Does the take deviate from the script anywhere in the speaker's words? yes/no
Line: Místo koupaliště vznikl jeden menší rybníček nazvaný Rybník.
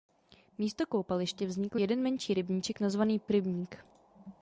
no